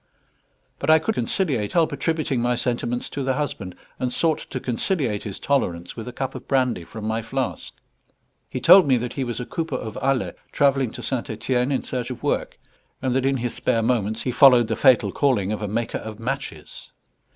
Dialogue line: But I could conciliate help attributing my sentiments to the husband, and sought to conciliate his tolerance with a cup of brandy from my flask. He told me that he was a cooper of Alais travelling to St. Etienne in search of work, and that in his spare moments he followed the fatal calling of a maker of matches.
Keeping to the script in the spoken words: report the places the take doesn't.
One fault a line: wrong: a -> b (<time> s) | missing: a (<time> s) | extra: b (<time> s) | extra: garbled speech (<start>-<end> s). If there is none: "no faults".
no faults